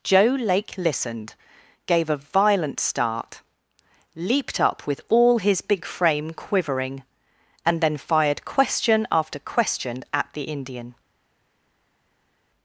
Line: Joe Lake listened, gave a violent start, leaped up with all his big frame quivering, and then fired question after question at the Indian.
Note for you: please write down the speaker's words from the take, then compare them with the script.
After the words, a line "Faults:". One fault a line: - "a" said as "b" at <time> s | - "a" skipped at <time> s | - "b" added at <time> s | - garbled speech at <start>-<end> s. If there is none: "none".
Joe Lake listened, gave a violent start, leaped up with all his big frame quivering, and then fired question after question at the Indian.
Faults:
none